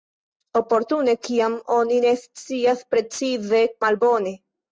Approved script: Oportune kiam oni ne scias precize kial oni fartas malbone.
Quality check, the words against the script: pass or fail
fail